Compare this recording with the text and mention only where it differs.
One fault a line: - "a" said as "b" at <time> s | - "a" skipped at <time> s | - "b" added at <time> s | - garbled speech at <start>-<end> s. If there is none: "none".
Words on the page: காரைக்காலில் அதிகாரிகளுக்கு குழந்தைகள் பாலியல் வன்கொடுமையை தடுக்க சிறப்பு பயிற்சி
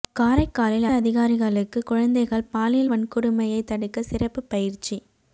none